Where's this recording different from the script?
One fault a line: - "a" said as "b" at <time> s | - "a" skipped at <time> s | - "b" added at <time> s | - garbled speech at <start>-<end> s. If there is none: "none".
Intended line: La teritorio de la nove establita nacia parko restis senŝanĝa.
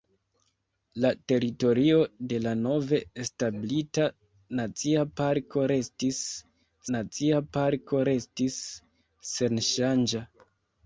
- "nacia parko restis" added at 7.0 s